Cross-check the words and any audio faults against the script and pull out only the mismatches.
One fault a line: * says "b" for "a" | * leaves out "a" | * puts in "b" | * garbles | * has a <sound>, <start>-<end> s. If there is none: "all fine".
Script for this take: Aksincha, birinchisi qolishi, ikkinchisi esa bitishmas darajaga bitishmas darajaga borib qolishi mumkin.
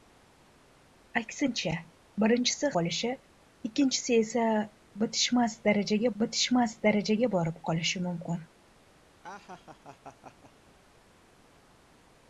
* has a laugh, 9.2-10.5 s